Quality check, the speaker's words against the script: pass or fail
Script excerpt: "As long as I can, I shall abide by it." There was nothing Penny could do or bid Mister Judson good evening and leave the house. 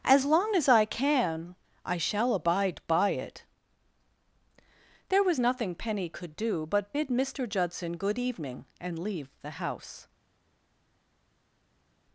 fail